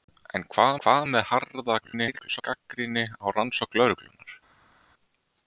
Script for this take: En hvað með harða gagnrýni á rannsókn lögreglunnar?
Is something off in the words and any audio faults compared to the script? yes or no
yes